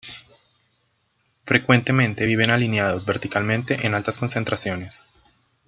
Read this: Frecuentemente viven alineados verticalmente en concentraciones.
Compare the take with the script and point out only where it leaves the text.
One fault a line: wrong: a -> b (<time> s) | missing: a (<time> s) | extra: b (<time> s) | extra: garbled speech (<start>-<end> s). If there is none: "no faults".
extra: altas (3.9 s)